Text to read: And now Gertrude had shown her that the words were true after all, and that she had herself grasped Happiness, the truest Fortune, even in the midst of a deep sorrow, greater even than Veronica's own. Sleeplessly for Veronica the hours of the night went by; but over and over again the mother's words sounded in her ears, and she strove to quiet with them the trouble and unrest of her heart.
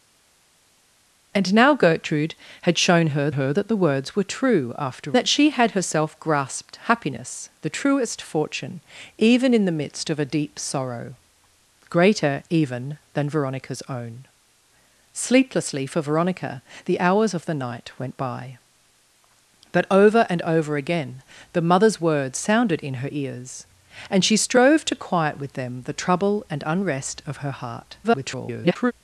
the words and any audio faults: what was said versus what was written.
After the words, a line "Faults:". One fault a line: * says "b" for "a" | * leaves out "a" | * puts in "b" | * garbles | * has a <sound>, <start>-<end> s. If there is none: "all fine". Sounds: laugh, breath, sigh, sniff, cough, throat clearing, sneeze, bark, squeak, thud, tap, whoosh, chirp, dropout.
And now Gertrude had shown her her that the words were true after that she had herself grasped Happiness, the truest Fortune, even in the midst of a deep sorrow, greater even than Veronica's own. Sleeplessly for Veronica the hours of the night went by; but over and over again the mother's words sounded in her ears, and she strove to quiet with them the trouble and unrest of her heart. [garbled]
Faults:
* puts in "her"
* leaves out "all and"
* garbles